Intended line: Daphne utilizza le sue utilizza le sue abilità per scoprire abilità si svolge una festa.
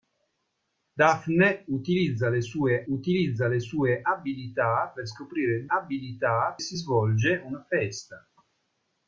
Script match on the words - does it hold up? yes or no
yes